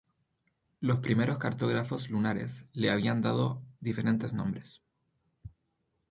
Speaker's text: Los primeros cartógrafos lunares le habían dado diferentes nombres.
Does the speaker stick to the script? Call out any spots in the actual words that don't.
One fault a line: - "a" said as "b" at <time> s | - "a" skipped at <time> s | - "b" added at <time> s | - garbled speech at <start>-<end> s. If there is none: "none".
none